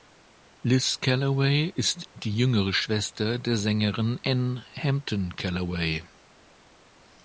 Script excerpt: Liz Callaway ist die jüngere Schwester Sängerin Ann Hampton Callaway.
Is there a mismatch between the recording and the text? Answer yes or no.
yes